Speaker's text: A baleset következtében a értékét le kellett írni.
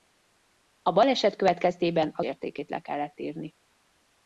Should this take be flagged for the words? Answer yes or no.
no